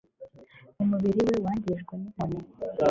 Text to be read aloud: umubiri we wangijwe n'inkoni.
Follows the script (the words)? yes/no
yes